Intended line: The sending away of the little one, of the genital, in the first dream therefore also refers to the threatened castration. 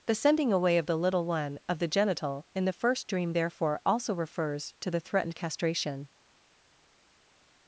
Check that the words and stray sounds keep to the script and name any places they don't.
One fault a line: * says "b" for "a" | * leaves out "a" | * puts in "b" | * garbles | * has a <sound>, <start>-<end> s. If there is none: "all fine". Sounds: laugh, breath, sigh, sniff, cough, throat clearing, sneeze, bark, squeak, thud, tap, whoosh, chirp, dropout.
all fine